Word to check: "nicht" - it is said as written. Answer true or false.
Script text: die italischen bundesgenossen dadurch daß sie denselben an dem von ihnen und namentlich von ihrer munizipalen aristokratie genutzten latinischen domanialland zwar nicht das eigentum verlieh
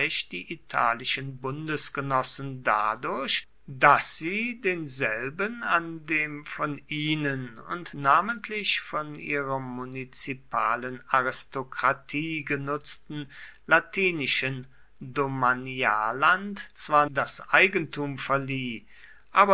false